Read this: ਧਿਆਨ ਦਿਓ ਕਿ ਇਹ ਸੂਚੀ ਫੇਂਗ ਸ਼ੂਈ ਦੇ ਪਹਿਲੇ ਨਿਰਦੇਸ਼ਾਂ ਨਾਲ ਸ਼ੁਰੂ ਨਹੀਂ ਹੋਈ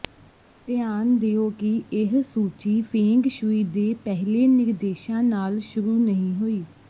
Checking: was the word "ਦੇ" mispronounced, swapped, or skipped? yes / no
no